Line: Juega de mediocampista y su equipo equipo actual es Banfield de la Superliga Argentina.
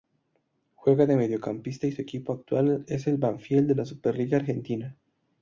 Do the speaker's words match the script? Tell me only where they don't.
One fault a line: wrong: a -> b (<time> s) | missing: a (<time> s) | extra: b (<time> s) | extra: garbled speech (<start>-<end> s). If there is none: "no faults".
missing: equipo (2.3 s)
extra: el (3.1 s)